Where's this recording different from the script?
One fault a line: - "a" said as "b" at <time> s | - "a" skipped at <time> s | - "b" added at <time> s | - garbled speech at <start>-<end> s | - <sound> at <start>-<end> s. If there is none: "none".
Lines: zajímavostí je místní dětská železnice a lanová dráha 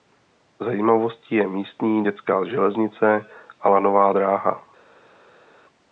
none